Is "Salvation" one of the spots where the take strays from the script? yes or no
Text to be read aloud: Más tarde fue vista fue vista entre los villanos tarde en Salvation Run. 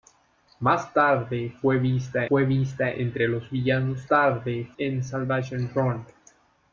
no